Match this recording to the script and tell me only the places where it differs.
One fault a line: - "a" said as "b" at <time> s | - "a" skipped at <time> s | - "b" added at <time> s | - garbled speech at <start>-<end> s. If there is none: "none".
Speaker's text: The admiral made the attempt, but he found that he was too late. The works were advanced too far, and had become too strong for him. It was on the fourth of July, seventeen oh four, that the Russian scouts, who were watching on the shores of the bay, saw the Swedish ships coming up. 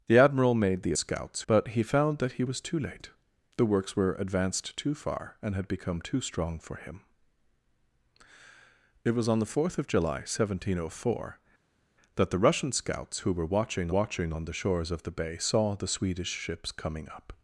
- "attempt" said as "scouts" at 0.9 s
- "watching" added at 13.9 s